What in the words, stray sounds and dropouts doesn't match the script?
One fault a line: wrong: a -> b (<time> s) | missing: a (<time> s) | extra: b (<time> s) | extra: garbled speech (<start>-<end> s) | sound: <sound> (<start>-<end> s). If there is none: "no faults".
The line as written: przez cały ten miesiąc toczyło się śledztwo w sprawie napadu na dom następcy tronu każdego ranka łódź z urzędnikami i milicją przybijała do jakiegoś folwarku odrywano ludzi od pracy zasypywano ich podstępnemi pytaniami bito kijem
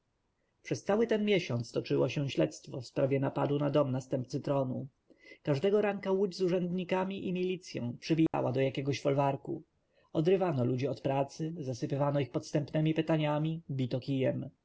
sound: dropout (8.3-8.3 s)